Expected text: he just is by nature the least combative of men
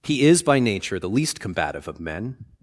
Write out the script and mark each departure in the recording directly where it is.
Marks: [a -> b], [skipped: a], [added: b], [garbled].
he [skipped: just] is by nature the least combative of men